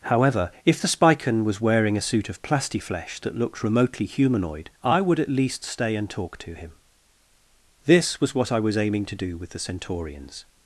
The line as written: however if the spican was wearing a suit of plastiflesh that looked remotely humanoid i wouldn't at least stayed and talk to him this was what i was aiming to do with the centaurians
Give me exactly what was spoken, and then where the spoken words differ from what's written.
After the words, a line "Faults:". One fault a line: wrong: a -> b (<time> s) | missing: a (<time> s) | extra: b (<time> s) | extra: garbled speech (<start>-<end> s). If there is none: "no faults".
however if the spican was wearing a suit of plastiflesh that looked remotely humanoid i would at least stay and talk to him this was what i was aiming to do with the centaurians
Faults:
wrong: wouldn't -> would (5.0 s)
wrong: stayed -> stay (5.6 s)